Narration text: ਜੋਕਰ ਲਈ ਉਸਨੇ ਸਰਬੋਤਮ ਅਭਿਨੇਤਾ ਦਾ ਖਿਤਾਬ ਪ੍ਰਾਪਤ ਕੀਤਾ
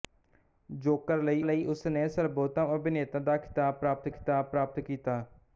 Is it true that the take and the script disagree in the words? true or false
true